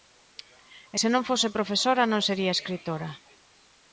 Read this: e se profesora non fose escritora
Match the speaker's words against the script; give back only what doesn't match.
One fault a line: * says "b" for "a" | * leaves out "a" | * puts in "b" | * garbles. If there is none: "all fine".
* puts in "non fose"
* says "sería" for "fose"